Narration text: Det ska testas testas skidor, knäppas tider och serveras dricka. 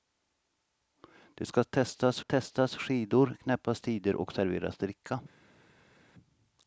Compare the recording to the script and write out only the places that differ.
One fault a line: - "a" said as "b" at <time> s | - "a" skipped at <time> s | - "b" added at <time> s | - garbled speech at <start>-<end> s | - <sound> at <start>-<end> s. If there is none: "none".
none